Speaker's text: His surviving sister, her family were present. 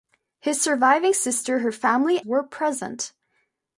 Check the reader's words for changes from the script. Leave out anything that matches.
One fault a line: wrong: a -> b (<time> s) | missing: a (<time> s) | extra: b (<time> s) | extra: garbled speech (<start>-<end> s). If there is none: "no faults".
no faults